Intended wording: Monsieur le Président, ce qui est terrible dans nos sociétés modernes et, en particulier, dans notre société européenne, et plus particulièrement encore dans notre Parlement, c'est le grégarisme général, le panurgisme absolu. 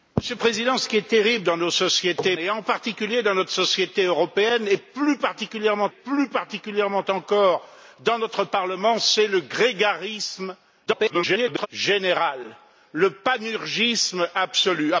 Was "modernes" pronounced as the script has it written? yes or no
no